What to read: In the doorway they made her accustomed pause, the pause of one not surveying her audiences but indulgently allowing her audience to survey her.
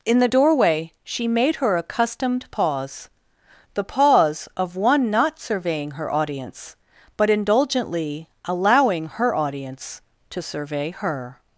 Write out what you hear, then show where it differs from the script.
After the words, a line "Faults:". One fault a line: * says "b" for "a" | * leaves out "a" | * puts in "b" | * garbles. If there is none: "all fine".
In the doorway she made her accustomed pause, the pause of one not surveying her audience but indulgently allowing her audience to survey her.
Faults:
* says "she" for "they"
* says "audience" for "audiences"